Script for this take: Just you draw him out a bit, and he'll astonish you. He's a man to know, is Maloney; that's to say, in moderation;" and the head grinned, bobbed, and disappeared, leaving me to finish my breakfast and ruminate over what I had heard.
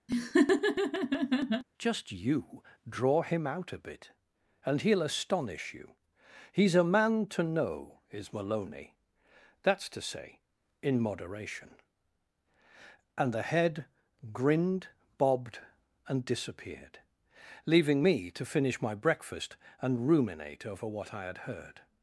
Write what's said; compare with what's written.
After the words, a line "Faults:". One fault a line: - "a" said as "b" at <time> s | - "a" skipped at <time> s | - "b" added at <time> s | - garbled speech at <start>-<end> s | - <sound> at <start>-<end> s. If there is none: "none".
Just you draw him out a bit, and he'll astonish you. He's a man to know, is Maloney; that's to say, in moderation;" and the head grinned, bobbed, and disappeared, leaving me to finish my breakfast and ruminate over what I had heard.
Faults:
- laugh at 0.1-1.6 s